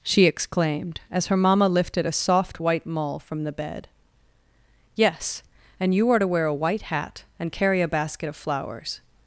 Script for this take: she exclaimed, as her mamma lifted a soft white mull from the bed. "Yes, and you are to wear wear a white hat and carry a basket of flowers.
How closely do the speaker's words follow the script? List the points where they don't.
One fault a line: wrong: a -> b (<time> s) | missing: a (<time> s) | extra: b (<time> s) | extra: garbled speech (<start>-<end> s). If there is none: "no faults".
missing: wear (6.4 s)